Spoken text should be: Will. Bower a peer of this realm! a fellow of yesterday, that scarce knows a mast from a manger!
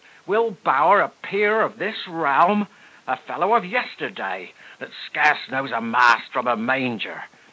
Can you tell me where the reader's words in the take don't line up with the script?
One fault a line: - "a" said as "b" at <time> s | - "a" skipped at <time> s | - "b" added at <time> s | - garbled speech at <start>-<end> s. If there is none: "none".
none